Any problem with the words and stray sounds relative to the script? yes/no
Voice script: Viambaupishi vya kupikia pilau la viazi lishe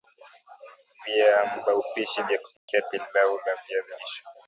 yes